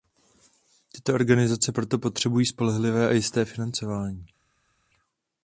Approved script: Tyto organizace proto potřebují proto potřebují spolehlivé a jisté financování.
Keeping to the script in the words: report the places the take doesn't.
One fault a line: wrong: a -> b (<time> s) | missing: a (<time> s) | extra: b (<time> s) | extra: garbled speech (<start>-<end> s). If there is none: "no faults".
missing: proto potřebují (2.5 s)